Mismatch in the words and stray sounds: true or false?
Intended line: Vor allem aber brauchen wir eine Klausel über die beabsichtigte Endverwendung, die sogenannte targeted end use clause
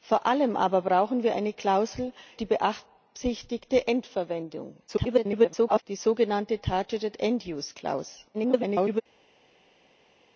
true